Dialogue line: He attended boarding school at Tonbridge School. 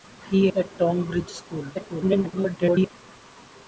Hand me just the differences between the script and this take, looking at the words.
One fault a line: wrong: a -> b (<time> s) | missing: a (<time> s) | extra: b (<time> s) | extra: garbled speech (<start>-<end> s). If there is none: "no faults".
missing: attended boarding school (0.5 s)
extra: garbled speech (1.7-2.9 s)